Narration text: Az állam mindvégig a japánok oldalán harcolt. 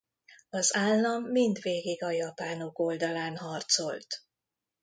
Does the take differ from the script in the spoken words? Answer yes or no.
no